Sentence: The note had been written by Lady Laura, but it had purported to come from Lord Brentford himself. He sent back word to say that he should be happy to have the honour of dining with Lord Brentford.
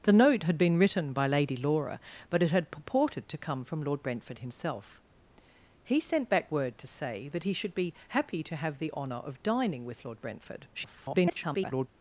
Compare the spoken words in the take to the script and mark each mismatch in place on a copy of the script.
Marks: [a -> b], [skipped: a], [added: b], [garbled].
The note had been written by Lady Laura, but it had purported to come from Lord Brentford himself. He sent back word to say that he should be happy to have the honour of dining with Lord Brentford. [garbled]